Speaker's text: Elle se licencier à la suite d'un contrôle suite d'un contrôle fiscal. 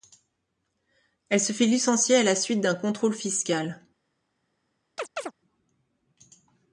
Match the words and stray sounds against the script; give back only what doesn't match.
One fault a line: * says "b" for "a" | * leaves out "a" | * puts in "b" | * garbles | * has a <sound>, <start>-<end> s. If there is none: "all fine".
* puts in "fait"
* leaves out "suite d'un contrôle"
* has a chirp, 5.0-5.3 s